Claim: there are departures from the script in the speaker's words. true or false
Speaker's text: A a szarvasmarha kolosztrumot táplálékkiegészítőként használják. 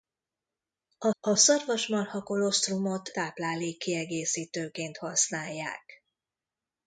false